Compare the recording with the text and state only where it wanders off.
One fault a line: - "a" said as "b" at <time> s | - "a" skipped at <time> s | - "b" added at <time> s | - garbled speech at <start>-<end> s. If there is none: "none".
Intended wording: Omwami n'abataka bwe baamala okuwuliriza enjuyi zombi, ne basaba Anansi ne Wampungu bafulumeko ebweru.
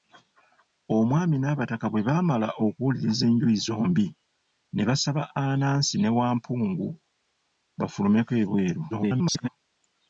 - garbled speech at 8.9-9.5 s